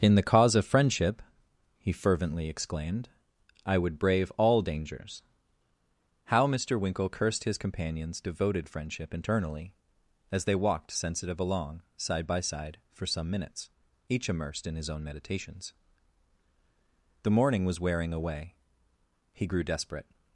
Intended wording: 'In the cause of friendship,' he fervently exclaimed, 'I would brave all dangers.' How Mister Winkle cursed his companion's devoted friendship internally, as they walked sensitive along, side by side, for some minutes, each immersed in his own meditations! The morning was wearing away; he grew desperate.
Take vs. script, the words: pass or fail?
pass